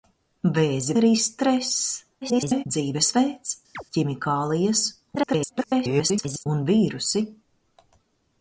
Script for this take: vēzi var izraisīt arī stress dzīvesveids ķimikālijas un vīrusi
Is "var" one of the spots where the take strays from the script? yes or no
yes